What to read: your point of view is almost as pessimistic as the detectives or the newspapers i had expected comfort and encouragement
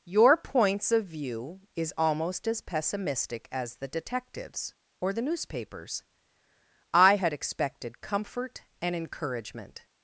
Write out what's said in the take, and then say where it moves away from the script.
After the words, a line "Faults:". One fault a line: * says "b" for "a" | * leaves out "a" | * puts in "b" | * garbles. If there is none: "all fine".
your points of view is almost as pessimistic as the detectives or the newspapers i had expected comfort and encouragement
Faults:
* says "points" for "point"